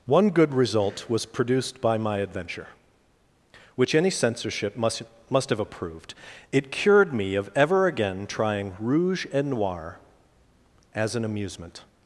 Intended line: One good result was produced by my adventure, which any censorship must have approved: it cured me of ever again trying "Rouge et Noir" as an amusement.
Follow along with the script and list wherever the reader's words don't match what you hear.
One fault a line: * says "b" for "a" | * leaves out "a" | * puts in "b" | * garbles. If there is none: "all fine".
* puts in "must"